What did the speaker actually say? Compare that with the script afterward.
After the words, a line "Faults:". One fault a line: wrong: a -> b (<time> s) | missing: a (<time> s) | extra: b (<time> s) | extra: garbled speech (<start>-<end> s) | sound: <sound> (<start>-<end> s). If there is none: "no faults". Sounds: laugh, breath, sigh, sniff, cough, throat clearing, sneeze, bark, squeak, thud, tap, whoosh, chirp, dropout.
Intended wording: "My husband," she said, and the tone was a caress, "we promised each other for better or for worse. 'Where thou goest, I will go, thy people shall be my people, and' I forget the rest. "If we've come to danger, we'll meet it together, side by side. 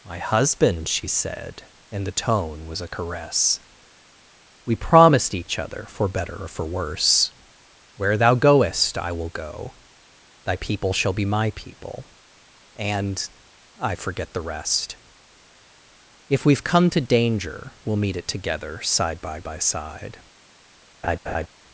"My husband," she said, and the tone was a caress, "we promised each other for better or for worse. 'Where thou goest, I will go, thy people shall be my people, and' I forget the rest. "If we've come to danger, we'll meet it together, side by by side.
Faults:
extra: by (19.4 s)
sound: laugh (21.0-21.5 s)